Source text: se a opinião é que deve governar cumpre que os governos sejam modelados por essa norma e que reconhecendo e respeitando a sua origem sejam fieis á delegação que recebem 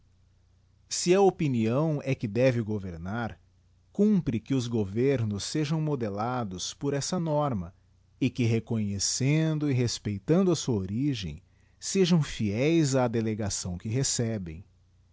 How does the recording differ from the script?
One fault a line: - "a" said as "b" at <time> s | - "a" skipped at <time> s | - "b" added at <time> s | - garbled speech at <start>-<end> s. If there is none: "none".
none